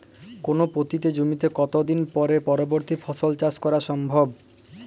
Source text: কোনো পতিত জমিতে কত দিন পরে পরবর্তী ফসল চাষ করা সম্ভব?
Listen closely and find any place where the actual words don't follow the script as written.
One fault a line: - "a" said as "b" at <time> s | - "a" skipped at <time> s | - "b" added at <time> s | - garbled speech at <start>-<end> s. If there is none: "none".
none